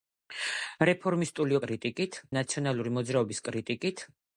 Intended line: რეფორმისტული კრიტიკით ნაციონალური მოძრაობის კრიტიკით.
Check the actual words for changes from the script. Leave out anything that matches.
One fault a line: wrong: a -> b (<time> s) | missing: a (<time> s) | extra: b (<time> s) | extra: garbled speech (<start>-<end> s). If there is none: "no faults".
no faults